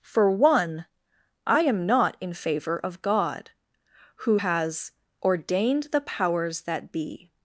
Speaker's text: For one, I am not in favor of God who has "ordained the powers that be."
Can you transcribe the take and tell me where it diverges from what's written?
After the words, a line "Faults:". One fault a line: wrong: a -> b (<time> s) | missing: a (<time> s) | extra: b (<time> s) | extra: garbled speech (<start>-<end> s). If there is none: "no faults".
For one, I am not in favor of God who has "ordained the powers that be."
Faults:
no faults